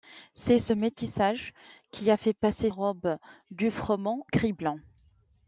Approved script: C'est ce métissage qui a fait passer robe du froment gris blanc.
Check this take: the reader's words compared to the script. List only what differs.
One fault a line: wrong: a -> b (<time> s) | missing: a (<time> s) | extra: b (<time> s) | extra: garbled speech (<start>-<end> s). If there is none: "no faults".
no faults